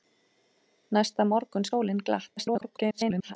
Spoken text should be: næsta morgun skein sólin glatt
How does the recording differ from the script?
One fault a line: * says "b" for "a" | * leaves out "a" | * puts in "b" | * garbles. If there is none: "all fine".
* leaves out "skein"
* garbles